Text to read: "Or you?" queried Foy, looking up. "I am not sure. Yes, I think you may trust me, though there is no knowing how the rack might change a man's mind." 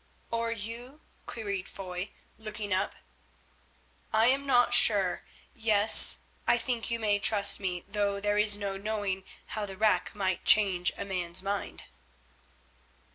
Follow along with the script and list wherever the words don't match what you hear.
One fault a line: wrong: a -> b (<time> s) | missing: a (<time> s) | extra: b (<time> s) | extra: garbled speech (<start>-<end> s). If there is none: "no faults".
no faults